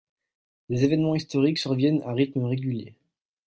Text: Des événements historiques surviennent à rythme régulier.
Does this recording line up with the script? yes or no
yes